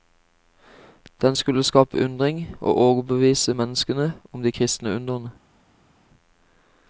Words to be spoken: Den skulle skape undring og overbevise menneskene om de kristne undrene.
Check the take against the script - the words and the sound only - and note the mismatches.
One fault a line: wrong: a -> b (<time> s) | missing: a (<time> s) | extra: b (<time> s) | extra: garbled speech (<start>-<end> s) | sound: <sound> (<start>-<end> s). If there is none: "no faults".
no faults